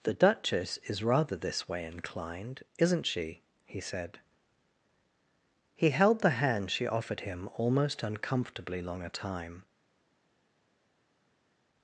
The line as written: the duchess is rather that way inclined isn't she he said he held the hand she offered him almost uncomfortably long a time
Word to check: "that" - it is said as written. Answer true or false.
false